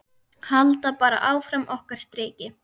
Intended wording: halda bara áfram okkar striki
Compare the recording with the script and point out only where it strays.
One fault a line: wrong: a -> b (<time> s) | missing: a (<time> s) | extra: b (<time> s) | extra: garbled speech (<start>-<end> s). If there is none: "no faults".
no faults